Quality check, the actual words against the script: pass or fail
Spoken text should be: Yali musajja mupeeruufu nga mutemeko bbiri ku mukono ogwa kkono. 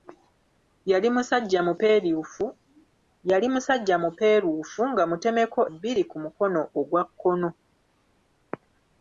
pass